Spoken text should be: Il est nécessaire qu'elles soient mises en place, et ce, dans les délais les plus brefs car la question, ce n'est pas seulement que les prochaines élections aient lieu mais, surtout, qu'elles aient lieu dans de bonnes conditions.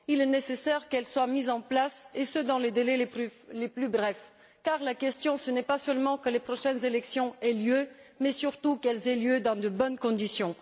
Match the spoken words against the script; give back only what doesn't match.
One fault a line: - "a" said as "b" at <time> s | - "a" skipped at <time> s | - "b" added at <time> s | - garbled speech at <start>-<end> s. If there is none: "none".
none